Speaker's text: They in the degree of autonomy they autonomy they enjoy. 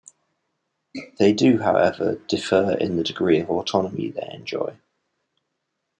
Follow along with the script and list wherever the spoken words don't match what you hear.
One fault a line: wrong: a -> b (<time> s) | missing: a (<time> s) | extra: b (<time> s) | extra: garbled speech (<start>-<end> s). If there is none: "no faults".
extra: do however differ (1.3 s)
missing: autonomy they (4.3 s)